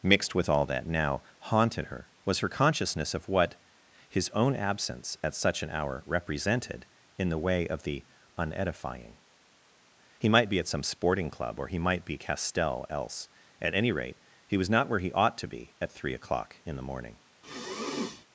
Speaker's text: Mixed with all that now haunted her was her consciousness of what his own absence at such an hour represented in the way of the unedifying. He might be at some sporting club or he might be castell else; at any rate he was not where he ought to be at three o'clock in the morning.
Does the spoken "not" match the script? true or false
true